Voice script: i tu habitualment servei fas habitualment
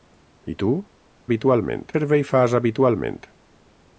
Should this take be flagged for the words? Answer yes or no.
no